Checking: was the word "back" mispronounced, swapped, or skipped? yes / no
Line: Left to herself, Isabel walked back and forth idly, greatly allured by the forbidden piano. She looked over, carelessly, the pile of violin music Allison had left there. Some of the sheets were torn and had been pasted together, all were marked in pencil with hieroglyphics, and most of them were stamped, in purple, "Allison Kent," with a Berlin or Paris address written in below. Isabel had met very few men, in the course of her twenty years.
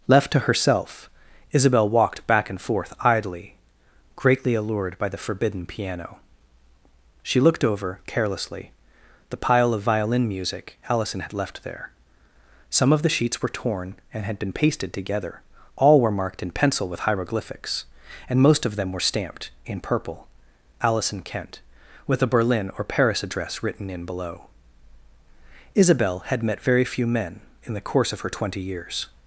no